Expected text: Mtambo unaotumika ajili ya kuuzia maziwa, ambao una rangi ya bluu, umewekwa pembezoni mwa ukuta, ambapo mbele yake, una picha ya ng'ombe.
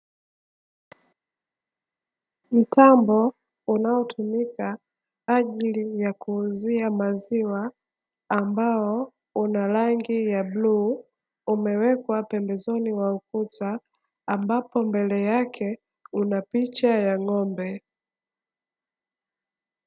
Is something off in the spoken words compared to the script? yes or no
no